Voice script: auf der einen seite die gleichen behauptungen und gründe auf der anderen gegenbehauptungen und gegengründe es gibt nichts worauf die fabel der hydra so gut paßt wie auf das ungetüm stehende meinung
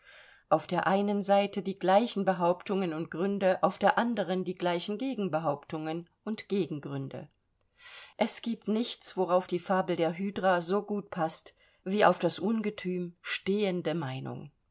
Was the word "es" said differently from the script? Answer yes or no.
no